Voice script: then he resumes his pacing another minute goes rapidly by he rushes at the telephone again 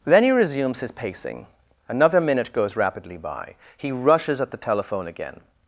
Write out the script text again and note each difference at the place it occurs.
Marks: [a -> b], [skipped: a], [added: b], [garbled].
then he resumes his pacing another minute goes rapidly by he rushes at the telephone again